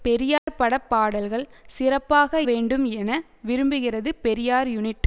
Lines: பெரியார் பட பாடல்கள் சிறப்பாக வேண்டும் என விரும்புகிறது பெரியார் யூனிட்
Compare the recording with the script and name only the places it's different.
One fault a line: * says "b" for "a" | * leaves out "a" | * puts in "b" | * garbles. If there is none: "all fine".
all fine